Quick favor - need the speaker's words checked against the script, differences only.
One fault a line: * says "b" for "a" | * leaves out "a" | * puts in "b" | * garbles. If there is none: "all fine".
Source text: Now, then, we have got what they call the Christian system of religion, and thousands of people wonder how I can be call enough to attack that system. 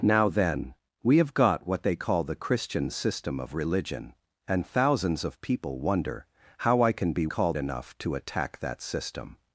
all fine